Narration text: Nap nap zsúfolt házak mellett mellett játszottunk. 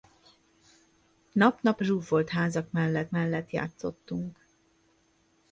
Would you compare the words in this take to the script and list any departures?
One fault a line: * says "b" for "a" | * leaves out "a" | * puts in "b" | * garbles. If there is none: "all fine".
all fine